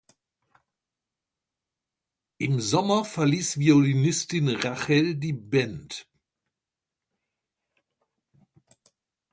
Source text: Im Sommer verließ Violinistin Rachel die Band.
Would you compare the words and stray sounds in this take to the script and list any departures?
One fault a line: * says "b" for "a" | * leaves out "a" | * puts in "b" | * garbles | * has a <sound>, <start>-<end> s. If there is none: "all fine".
all fine